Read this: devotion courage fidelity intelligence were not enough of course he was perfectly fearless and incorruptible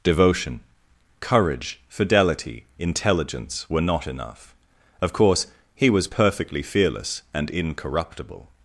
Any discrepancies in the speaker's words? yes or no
no